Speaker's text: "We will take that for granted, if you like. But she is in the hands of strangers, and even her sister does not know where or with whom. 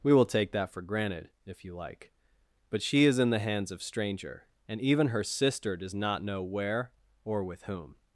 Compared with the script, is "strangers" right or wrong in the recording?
wrong